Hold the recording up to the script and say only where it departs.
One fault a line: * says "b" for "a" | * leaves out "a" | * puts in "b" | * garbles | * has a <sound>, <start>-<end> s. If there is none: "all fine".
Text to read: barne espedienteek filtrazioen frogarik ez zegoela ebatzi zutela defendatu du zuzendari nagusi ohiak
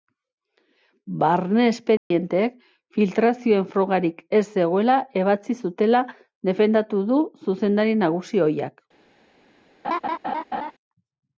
* has a dropout, 2.0-2.1 s
* has a laugh, 9.8-10.7 s